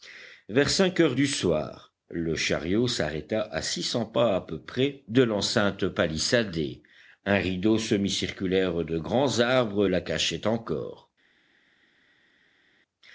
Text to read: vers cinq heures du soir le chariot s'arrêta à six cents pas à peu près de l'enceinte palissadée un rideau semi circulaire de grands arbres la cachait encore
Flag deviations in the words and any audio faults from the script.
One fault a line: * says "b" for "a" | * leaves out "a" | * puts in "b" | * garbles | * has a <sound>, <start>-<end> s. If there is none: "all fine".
all fine